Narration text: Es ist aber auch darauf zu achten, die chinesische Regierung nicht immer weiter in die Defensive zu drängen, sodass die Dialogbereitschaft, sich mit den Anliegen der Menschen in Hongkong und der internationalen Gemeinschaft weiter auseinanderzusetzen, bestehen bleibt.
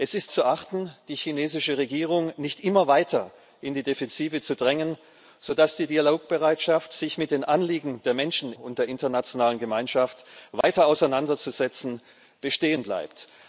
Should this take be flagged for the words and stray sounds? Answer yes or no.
yes